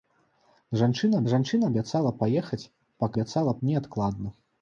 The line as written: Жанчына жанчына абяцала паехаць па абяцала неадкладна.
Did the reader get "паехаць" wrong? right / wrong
right